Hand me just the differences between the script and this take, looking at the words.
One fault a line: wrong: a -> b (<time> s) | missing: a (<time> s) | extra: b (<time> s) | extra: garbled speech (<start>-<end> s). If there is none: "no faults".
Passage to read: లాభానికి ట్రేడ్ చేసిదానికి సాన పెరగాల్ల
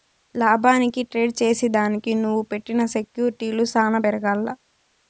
extra: నువ్వు పెట్టిన సెక్యూర్టీలు (2.1 s)